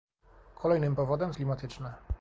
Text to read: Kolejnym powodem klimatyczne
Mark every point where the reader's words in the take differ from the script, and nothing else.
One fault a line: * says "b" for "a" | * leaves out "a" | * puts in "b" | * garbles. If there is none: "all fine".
all fine